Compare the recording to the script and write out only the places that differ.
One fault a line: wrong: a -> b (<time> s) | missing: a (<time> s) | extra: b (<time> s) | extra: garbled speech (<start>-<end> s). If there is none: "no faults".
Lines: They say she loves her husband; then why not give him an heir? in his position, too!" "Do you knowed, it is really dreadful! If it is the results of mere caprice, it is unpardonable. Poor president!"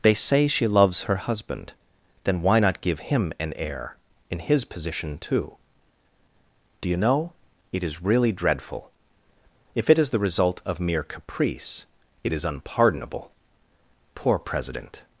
wrong: knowed -> know (7.0 s)
wrong: results -> result (10.2 s)